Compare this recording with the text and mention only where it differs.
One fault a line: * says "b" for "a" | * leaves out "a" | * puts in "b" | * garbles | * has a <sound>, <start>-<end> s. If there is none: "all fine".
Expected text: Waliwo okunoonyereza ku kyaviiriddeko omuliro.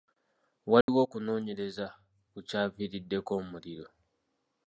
* has a dropout, 0.8-0.9 s